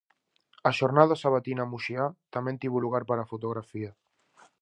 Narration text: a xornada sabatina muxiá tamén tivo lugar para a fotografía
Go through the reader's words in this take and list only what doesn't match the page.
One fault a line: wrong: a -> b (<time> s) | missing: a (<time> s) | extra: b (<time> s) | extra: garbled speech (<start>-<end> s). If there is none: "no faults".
no faults